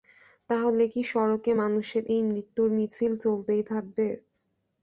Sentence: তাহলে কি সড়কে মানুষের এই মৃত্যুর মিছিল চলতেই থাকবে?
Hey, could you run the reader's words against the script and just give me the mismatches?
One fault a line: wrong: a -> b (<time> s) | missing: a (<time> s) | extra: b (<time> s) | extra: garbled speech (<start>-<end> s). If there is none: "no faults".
no faults